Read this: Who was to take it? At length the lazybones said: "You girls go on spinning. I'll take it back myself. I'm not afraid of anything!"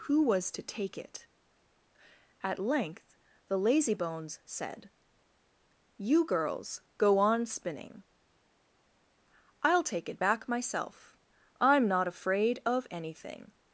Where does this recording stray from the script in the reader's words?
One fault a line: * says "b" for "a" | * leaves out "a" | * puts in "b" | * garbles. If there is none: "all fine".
all fine